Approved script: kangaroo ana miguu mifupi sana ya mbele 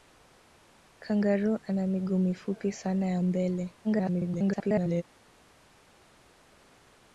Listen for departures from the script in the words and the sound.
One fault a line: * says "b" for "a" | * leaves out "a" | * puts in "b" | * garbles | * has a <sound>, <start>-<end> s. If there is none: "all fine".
* garbles